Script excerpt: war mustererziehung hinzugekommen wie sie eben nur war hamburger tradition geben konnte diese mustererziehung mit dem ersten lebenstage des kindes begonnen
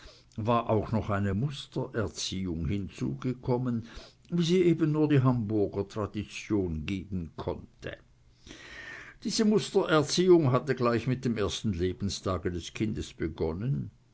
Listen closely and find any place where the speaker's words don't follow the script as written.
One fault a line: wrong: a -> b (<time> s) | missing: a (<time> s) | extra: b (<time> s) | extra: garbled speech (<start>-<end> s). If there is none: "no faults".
extra: auch noch eine (0.7 s)
wrong: war -> die (5.1 s)
extra: hatte gleich (10.5 s)